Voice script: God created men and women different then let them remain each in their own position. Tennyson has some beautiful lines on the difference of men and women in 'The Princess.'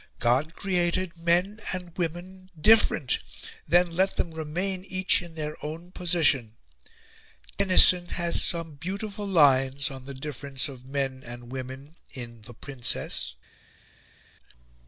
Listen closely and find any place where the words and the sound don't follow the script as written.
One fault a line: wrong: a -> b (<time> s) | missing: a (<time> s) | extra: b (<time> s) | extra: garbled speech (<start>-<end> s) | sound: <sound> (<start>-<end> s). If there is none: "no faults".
no faults